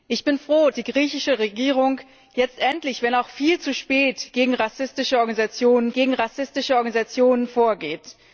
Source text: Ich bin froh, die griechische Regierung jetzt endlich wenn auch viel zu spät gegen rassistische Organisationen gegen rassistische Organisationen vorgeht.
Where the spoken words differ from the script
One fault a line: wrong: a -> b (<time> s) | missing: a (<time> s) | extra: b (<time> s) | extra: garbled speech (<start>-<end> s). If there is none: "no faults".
no faults